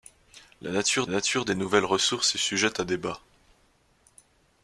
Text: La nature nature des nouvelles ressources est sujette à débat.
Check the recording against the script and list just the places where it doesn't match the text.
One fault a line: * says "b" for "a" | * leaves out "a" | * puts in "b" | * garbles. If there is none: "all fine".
all fine